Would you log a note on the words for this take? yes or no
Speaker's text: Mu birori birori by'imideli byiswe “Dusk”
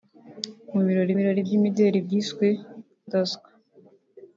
no